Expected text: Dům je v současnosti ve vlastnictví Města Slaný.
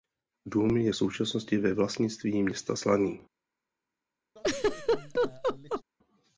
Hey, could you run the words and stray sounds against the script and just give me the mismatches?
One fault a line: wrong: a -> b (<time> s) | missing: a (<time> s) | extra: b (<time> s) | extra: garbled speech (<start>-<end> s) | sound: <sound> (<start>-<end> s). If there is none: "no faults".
sound: laugh (4.4-5.8 s)